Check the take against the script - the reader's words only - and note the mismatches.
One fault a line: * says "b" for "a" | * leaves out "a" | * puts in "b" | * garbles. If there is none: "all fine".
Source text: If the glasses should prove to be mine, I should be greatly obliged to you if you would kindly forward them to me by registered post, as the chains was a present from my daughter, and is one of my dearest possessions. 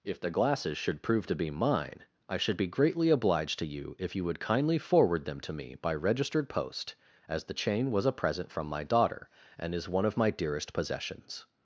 * says "chain" for "chains"